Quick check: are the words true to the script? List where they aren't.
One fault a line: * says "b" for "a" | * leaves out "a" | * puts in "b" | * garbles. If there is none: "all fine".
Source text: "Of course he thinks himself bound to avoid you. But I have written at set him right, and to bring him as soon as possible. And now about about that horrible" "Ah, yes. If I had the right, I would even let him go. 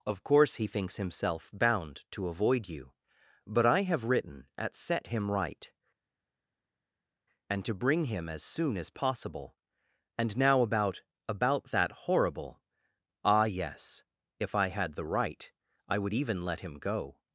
all fine